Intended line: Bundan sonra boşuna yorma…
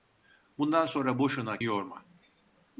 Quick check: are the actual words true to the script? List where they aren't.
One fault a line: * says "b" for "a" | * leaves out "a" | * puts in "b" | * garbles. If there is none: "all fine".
all fine